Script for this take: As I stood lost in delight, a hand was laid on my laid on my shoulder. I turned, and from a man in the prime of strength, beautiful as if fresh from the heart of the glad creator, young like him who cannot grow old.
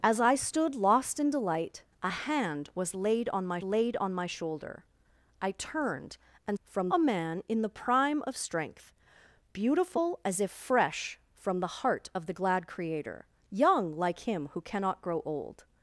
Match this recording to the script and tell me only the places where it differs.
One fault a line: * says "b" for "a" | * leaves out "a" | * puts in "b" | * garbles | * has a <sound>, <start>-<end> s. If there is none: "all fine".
all fine